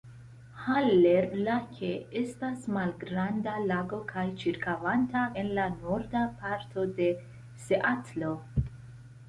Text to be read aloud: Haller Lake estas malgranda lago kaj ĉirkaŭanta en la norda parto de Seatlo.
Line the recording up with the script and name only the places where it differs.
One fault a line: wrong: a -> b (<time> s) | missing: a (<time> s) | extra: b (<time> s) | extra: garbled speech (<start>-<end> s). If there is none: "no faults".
no faults